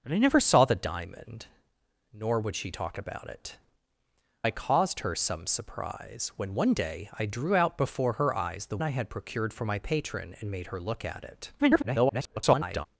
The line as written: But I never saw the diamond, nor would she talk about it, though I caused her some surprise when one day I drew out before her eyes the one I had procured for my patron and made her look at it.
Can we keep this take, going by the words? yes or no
no